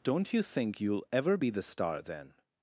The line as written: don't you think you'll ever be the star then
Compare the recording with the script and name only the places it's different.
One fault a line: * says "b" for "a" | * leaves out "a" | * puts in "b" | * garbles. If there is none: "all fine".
all fine